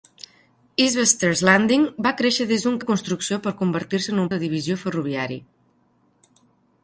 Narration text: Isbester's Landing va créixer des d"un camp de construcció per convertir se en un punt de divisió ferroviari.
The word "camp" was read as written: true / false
false